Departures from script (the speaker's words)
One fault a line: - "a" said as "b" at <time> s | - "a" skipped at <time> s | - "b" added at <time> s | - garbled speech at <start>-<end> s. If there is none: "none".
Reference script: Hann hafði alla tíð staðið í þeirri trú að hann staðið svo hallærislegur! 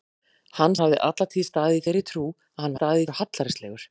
none